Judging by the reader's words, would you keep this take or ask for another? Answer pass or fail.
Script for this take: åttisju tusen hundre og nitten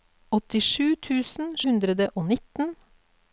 pass